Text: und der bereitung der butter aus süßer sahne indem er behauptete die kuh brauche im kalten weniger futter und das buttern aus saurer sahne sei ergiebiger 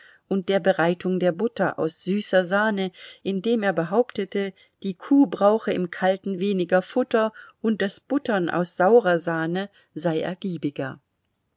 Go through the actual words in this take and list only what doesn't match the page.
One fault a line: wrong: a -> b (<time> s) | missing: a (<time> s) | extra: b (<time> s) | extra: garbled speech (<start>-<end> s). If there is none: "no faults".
no faults